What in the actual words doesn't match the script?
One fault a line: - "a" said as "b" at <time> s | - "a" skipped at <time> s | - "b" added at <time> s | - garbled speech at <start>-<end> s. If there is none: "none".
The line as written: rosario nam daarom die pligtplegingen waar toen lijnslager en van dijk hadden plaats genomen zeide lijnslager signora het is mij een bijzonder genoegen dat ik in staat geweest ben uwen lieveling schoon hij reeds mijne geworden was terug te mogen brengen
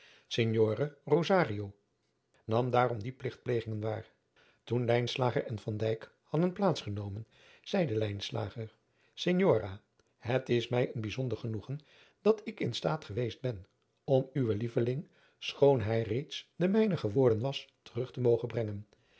- "om" added at 14.0 s
- "de" added at 16.6 s